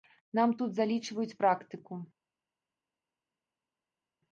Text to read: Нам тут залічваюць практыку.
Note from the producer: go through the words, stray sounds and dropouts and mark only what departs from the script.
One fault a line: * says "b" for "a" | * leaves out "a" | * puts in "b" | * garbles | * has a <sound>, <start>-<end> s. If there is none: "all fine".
all fine